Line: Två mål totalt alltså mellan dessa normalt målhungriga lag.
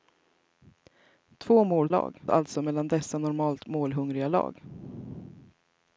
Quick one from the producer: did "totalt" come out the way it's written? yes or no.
no